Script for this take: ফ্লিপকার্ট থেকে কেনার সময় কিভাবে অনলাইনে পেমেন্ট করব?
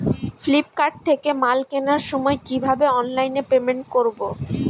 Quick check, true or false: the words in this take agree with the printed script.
false